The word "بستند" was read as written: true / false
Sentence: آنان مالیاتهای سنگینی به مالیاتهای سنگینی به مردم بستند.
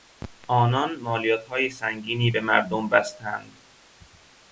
true